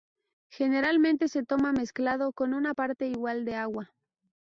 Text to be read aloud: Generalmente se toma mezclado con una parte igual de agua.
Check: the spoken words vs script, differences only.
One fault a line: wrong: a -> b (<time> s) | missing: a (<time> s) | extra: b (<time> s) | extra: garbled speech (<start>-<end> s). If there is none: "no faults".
no faults